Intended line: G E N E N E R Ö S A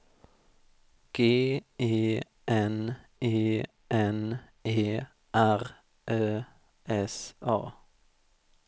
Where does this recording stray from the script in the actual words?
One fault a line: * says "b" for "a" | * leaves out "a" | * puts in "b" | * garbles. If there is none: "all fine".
all fine